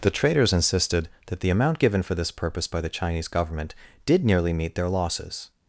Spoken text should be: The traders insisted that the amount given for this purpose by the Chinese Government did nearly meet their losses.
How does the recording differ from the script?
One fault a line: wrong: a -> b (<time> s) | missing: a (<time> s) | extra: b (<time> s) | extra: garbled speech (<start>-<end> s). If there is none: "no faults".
no faults